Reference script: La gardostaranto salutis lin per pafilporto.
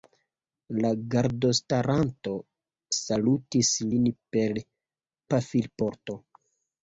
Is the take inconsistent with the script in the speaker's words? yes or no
no